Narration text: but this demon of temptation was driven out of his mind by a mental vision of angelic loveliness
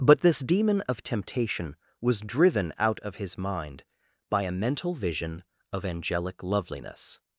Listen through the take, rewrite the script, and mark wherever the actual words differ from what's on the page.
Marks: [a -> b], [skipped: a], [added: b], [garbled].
but this demon of temptation was driven out of his mind by a mental vision of angelic loveliness